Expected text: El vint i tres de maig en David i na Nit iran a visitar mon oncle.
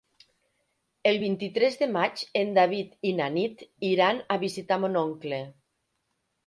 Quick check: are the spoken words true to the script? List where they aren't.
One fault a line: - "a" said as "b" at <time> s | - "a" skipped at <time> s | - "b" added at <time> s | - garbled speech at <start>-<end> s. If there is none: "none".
none